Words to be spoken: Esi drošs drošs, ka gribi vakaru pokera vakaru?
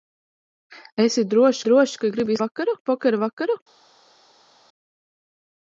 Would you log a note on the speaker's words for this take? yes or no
no